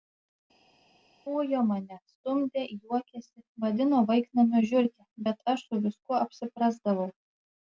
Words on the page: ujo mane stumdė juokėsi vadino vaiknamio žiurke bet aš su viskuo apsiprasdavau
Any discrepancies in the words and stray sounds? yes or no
no